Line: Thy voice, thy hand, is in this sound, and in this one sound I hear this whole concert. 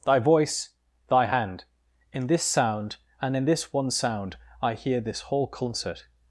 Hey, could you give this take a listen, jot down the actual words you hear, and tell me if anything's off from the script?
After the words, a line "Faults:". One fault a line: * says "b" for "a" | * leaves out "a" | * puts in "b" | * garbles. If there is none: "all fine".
Thy voice, thy hand, in this sound, and in this one sound I hear this whole concert.
Faults:
* leaves out "is"